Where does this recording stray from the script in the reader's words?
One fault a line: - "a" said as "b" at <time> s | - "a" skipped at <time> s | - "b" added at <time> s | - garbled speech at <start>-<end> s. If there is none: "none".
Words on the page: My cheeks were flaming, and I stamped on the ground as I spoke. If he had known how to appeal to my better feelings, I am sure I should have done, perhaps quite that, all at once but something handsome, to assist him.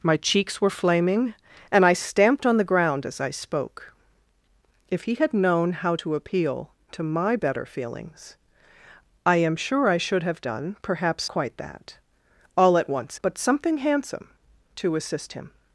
none